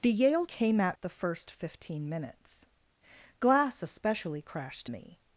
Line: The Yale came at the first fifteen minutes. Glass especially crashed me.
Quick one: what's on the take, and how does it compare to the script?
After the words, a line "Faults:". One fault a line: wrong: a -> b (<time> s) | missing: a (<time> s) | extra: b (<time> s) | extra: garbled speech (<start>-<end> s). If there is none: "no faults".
The Yale came at the first fifteen minutes. Glass especially crashed me.
Faults:
no faults